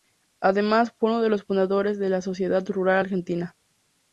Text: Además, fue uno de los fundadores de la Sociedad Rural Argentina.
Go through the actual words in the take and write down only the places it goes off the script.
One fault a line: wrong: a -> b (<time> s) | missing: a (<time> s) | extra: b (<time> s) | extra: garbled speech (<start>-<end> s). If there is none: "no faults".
no faults